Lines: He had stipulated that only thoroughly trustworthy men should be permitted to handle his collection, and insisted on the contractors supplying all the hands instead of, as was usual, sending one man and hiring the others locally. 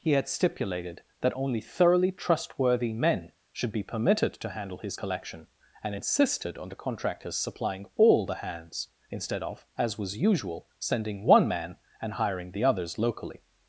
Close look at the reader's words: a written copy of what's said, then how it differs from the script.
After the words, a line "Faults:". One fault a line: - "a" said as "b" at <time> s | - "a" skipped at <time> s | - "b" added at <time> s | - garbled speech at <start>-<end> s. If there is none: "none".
He had stipulated that only thoroughly trustworthy men should be permitted to handle his collection, and insisted on the contractors supplying all the hands instead of, as was usual, sending one man and hiring the others locally.
Faults:
none